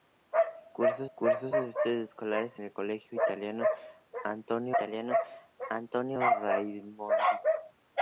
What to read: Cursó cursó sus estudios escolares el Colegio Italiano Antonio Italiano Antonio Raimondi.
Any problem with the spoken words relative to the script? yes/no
no